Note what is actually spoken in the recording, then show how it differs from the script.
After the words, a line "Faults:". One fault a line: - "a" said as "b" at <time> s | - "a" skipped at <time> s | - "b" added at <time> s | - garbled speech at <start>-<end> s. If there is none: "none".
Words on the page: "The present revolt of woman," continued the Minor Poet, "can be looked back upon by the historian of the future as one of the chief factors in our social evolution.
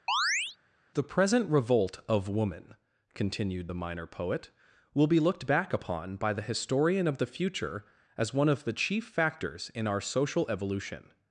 "The present revolt of woman," continued the Minor Poet, "will be looked back upon by the historian of the future as one of the chief factors in our social evolution.
Faults:
- "can" said as "will" at 4.9 s